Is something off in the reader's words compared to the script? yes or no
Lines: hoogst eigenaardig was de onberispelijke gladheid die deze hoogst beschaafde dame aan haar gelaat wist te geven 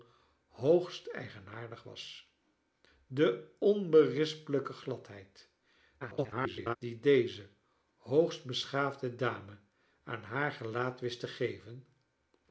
yes